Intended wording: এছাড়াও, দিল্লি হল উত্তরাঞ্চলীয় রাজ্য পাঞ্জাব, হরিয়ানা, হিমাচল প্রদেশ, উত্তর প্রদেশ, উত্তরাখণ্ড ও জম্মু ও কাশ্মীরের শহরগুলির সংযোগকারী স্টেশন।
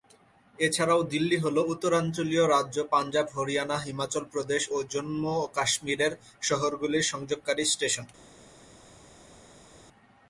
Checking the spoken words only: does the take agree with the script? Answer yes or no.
no